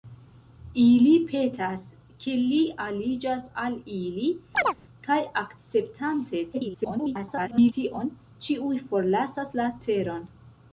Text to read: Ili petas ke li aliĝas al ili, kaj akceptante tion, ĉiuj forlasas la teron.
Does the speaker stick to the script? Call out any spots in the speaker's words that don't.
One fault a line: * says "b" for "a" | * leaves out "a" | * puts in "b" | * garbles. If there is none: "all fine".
* garbles